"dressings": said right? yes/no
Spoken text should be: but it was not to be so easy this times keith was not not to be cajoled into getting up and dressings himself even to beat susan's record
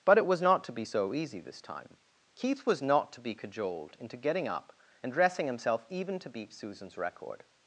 no